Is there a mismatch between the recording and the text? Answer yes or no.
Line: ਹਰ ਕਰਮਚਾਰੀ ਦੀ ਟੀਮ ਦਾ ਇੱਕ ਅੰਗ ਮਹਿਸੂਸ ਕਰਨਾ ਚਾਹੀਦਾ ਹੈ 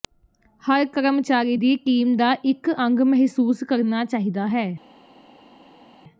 no